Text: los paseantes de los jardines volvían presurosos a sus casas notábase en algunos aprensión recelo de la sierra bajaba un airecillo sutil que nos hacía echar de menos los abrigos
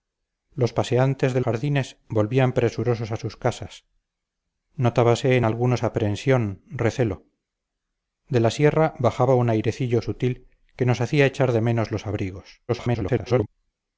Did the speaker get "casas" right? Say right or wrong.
right